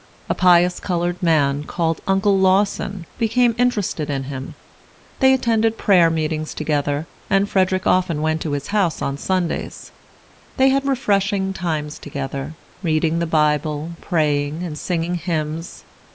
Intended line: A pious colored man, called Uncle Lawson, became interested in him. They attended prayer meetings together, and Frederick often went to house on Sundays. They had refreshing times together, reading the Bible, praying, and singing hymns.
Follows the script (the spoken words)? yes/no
no